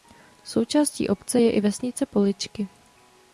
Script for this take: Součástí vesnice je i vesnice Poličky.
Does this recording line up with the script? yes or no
no